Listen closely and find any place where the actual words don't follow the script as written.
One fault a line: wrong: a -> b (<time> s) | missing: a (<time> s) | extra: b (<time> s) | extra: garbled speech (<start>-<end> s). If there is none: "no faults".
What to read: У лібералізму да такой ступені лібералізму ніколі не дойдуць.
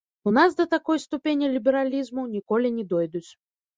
wrong: лібералізму -> нас (0.3 s)